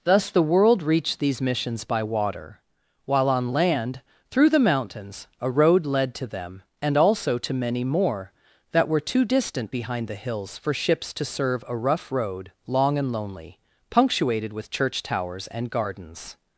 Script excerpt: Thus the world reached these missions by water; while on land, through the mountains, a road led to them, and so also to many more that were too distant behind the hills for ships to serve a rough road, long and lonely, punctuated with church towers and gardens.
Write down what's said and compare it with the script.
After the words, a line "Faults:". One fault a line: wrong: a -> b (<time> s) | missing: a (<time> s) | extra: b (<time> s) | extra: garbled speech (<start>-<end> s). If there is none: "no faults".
Thus the world reached these missions by water; while on land, through the mountains, a road led to them, and also to many more that were too distant behind the hills for ships to serve a rough road, long and lonely, punctuated with church towers and gardens.
Faults:
missing: so (7.0 s)